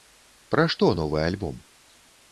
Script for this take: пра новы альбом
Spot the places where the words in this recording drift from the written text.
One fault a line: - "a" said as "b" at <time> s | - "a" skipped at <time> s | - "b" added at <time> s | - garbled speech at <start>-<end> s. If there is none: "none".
- "што" added at 0.8 s